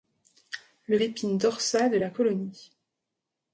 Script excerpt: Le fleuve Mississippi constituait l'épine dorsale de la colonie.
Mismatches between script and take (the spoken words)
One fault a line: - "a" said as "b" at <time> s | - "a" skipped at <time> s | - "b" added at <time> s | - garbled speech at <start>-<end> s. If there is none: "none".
- "fleuve Mississippi constituait" skipped at 1.0 s